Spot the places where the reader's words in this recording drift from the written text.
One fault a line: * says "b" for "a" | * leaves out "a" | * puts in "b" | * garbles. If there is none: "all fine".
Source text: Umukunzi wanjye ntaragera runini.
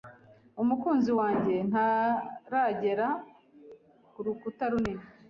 * puts in "kurukuta"